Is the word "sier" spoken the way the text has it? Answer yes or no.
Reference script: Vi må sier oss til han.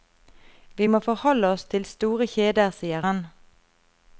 no